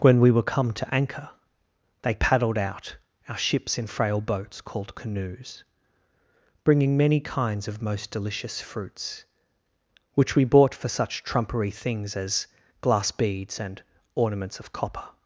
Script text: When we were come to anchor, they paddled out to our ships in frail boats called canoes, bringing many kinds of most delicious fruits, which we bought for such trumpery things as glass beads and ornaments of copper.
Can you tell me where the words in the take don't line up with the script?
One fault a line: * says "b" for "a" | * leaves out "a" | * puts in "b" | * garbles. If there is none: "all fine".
* leaves out "to"